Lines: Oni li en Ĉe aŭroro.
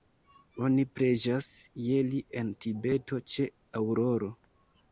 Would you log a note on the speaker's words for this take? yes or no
yes